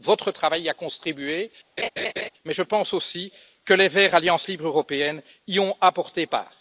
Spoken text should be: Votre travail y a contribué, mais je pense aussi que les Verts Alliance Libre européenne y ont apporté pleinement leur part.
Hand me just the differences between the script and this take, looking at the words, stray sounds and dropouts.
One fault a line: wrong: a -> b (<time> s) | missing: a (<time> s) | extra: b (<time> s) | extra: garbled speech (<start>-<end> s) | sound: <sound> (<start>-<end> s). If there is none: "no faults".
sound: laugh (1.8-2.3 s)
missing: pleinement leur (6.3 s)